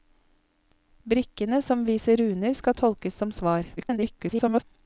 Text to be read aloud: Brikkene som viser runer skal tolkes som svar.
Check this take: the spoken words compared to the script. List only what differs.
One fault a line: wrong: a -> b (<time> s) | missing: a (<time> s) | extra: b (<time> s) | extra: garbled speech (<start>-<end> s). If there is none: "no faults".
extra: garbled speech (3.8-4.6 s)